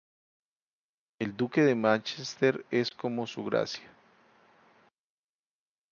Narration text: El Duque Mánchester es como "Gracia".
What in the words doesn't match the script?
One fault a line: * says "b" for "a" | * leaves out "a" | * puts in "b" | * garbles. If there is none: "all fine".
* puts in "de"
* puts in "Su"